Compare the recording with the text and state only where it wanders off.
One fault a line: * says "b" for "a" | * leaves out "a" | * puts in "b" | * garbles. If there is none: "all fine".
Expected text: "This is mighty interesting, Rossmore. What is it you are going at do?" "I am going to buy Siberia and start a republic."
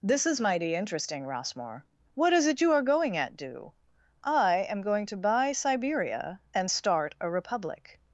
all fine